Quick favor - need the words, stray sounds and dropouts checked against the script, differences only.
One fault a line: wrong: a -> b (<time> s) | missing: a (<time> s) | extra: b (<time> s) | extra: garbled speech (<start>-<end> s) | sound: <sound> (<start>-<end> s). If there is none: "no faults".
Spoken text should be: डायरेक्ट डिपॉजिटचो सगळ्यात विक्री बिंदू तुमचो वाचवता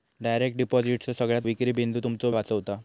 no faults